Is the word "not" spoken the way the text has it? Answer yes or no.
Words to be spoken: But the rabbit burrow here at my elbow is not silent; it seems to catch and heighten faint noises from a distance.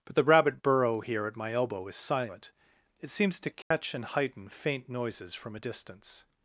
no